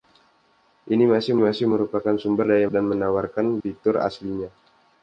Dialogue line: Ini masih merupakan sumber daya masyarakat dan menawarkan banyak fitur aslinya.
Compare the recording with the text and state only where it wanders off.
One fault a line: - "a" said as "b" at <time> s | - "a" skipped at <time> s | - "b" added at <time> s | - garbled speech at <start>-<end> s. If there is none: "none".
- "masih" added at 1.4 s
- "masyarakat" skipped at 2.7 s
- "banyak" skipped at 3.6 s